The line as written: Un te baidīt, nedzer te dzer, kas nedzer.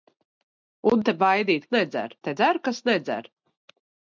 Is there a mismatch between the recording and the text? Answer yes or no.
no